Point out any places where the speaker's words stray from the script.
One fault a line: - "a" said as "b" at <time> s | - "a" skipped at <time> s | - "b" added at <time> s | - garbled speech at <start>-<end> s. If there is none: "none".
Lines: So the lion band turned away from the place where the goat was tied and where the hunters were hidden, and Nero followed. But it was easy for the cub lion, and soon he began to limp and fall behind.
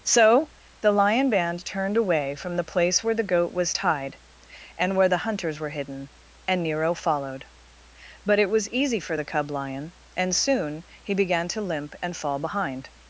none